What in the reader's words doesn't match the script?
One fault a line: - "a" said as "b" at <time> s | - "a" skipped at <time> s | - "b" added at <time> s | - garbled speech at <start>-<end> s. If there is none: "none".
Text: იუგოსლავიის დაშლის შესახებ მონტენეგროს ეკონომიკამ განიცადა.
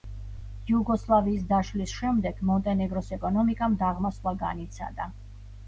- "შესახებ" said as "შემდეგ" at 2.0 s
- "დაღმასვლა" added at 3.9 s